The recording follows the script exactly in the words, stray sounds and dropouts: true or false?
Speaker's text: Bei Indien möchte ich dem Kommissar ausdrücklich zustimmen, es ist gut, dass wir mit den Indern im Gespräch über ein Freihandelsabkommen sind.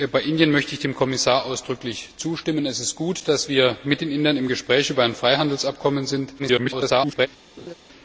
false